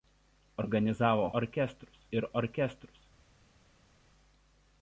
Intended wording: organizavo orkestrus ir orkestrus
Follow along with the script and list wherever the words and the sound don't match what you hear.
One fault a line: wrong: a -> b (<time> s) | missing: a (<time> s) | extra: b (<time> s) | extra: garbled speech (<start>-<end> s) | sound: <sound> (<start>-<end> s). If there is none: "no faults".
no faults